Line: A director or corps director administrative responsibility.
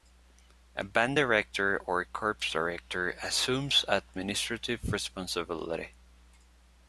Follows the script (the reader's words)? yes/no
no